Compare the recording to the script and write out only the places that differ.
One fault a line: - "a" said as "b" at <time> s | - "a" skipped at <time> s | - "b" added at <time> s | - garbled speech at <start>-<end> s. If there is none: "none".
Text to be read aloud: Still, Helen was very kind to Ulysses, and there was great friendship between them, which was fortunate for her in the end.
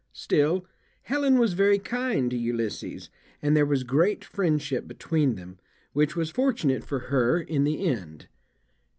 none